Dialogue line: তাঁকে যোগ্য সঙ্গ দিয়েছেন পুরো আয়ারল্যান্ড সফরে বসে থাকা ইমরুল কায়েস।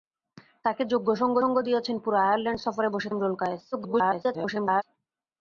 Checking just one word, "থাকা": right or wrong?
wrong